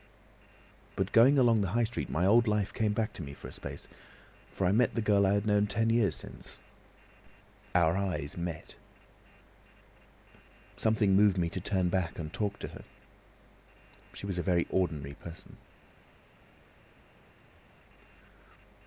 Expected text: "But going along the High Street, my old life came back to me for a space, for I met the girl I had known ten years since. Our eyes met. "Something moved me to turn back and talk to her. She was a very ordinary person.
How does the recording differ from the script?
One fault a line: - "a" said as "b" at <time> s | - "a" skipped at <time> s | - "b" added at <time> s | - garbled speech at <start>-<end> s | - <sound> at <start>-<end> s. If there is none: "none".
none